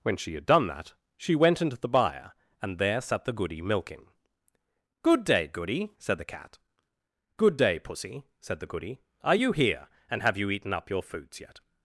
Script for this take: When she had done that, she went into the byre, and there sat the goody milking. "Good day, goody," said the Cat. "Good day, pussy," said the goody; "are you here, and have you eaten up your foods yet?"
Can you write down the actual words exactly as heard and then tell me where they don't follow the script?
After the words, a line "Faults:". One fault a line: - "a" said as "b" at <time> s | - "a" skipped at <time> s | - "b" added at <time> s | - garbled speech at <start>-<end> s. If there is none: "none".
When she had done that, she went into the byre, and there sat the goody milking. "Good day, goody," said the Cat. "Good day, pussy," said the goody; "are you here, and have you eaten up your foods yet?"
Faults:
none